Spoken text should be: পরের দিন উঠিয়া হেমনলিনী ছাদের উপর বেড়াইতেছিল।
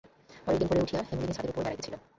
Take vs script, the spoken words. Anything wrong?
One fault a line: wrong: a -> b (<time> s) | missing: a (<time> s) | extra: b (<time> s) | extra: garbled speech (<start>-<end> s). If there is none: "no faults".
extra: ভোরে (0.7 s)